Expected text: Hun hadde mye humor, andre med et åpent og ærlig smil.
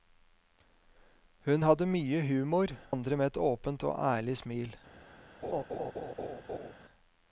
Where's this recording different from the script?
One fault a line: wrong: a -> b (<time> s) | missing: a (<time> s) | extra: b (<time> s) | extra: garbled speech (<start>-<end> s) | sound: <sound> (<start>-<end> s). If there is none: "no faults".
sound: laugh (5.4-6.7 s)